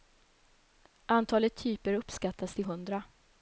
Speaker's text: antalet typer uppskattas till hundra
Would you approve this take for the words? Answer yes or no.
yes